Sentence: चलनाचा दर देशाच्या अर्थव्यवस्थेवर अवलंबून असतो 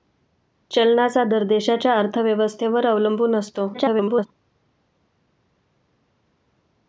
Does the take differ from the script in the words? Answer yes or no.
yes